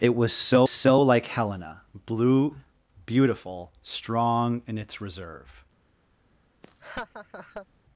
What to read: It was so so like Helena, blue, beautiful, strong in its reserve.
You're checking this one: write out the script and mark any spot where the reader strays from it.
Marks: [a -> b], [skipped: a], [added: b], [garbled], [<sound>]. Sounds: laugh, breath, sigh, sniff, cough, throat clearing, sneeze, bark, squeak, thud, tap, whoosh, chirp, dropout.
It was so so like Helena, blue, beautiful, strong in its reserve. [laugh]